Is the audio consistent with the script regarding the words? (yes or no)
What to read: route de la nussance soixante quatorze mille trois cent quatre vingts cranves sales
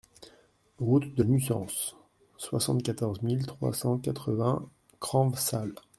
no